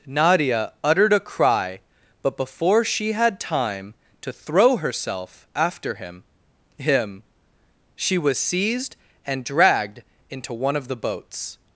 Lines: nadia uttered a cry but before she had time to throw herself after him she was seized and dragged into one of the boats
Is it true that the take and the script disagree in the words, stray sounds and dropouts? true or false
true